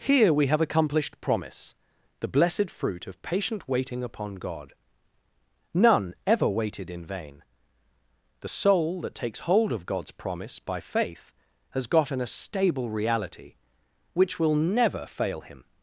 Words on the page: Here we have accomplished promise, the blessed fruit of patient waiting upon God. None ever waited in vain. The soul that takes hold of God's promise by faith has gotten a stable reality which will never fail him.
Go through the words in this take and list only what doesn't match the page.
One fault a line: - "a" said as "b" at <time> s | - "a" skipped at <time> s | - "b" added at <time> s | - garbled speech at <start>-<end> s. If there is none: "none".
none